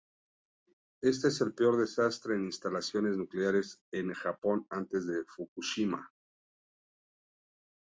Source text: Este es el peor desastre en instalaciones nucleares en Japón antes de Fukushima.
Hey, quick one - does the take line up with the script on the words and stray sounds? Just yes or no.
yes